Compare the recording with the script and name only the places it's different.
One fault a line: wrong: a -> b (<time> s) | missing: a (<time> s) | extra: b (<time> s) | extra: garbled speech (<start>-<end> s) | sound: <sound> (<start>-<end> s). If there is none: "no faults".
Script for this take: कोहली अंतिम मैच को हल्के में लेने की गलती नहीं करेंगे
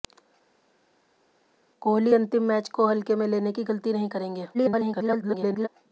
extra: garbled speech (4.5-5.7 s)